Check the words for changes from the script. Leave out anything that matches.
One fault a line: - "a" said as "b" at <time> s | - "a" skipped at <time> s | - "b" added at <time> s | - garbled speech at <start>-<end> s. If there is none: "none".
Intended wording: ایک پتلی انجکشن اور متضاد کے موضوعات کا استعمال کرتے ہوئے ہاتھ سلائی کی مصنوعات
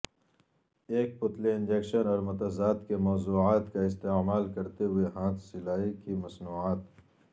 none